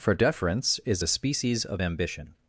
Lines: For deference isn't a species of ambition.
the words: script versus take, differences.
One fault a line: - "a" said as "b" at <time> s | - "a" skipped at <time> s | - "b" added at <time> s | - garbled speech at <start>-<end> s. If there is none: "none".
- "isn't" said as "is" at 0.9 s